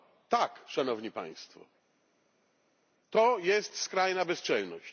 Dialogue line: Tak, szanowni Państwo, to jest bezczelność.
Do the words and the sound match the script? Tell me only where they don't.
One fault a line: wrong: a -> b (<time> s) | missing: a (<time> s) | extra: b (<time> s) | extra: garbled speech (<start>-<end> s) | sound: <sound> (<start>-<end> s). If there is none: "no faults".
extra: skrajna (3.8 s)